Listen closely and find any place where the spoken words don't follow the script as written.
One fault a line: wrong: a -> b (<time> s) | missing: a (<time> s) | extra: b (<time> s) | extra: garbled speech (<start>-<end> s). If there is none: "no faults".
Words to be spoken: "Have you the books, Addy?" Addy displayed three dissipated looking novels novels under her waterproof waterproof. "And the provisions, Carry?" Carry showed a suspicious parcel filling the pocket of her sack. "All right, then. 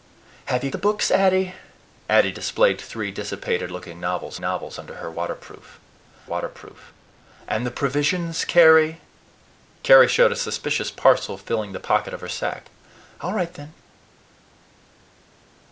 no faults